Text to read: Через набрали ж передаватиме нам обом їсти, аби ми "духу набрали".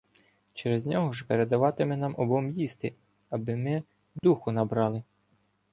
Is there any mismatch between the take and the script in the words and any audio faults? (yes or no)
yes